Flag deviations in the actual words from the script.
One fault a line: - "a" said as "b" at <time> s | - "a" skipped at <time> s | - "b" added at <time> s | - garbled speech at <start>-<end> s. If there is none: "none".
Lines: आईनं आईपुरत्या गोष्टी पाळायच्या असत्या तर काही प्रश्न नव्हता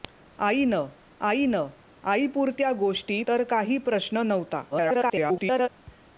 - "आईनं" added at 1.2 s
- "पाळायच्या असत्या" skipped at 3.2 s
- garbled speech at 4.7-5.7 s